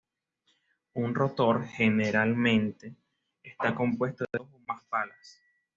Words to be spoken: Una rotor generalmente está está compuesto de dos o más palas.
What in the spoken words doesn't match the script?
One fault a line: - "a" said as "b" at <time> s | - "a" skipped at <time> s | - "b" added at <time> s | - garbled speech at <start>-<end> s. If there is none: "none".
- "Una" said as "Un" at 0.9 s
- "está" skipped at 3.8 s